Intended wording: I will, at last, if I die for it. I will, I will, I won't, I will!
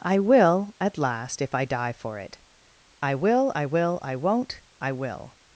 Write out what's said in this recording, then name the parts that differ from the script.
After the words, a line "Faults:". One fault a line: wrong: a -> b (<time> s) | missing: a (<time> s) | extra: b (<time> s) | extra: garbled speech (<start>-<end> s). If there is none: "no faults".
I will, at last, if I die for it. I will, I will, I won't, I will!
Faults:
no faults